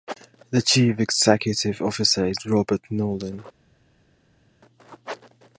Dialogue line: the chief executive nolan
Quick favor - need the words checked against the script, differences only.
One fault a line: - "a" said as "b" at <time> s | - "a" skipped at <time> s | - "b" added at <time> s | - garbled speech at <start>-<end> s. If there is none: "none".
- "officer is robert" added at 1.8 s